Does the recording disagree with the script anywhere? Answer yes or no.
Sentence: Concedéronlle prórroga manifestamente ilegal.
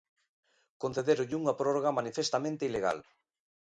yes